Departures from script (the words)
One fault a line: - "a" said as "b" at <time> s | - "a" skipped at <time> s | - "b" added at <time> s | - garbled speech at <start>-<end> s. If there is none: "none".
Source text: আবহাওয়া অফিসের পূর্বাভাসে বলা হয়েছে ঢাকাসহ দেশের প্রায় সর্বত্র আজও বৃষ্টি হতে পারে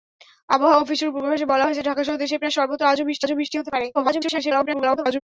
- "আজও বৃষ্টি" added at 3.2 s
- garbled speech at 3.9-5.2 s